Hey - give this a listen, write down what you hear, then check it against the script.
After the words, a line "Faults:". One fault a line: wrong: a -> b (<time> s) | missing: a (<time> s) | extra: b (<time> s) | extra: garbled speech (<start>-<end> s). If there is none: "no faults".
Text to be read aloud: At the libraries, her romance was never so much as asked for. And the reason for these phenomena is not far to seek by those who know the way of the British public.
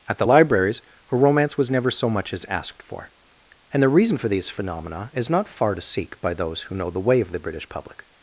At the libraries, her romance was never so much as asked for. And the reason for these phenomena is not far to seek by those who know the way of the British public.
Faults:
no faults